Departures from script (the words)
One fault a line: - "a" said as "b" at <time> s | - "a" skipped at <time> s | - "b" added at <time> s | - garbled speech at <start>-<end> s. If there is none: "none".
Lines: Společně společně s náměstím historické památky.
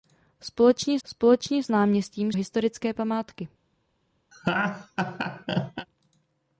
none